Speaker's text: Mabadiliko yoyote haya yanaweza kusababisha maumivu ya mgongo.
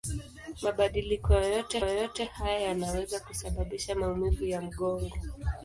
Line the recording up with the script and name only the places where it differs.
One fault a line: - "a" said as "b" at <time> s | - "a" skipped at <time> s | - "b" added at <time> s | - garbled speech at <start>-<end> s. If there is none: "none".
- "yoyote" added at 1.8 s